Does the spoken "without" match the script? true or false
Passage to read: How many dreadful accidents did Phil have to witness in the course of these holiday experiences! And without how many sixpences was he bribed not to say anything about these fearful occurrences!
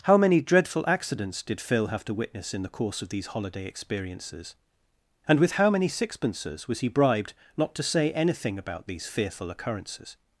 false